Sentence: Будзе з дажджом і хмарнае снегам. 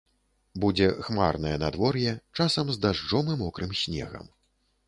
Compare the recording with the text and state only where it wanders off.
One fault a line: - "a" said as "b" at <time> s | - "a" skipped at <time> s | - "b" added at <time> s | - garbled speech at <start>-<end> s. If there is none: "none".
- "хмарнае надвор'е часам" added at 1.1 s
- "хмарнае" said as "мокрым" at 3.5 s